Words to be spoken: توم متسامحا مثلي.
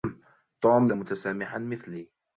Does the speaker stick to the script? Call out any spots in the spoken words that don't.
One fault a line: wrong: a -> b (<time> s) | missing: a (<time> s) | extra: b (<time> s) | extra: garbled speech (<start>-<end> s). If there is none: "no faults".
no faults